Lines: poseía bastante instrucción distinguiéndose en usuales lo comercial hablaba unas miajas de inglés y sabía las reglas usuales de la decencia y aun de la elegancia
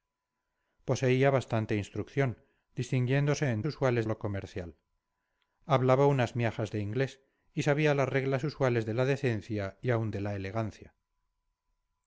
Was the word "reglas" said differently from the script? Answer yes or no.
no